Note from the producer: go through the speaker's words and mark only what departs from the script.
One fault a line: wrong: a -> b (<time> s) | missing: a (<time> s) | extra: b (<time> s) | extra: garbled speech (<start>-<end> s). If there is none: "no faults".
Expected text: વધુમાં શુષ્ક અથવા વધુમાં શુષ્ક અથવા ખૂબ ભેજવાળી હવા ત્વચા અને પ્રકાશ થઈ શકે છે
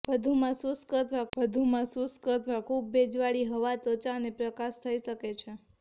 no faults